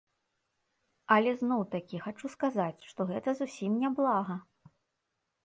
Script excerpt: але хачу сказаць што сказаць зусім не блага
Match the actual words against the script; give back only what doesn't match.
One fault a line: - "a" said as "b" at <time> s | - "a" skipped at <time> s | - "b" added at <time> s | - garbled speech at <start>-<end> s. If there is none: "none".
- "зноў такі" added at 1.4 s
- "сказаць" said as "гэта" at 3.1 s